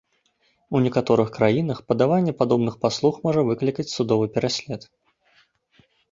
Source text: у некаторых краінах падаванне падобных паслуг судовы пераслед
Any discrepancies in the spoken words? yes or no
yes